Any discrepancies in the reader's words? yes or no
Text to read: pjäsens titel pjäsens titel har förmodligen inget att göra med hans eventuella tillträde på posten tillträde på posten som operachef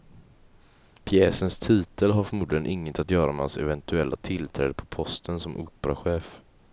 yes